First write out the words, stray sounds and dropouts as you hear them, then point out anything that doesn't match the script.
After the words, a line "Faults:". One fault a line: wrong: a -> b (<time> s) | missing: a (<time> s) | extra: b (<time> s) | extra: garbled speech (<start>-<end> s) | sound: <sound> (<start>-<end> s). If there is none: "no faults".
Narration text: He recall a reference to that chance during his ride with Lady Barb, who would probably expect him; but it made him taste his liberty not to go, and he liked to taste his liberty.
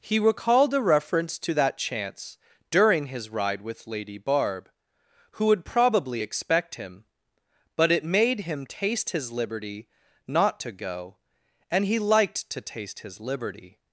He recalled a reference to that chance during his ride with Lady Barb, who would probably expect him; but it made him taste his liberty not to go, and he liked to taste his liberty.
Faults:
wrong: recall -> recalled (0.2 s)